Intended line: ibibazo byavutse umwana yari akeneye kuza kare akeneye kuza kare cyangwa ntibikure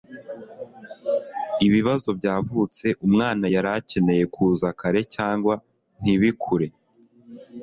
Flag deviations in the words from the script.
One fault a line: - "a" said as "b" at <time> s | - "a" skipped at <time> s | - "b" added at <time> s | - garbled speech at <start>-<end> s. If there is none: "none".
- "akeneye kuza kare" skipped at 5.0 s